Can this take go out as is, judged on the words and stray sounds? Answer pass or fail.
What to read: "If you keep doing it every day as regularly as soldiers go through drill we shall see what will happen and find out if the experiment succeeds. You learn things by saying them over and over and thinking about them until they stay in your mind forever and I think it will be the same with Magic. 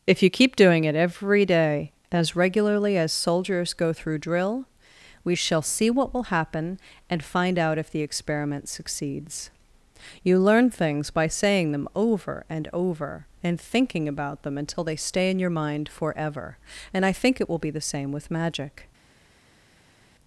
pass